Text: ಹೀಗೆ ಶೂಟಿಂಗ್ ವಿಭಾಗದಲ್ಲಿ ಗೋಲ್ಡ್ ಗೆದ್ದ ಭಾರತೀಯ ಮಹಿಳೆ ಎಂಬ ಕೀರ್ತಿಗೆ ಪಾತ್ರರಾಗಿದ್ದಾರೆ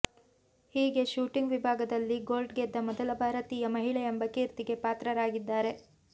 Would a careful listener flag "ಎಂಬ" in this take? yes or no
no